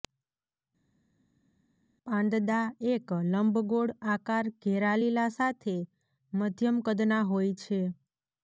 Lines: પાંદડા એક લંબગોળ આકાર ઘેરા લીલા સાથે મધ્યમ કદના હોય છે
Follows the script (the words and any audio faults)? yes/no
yes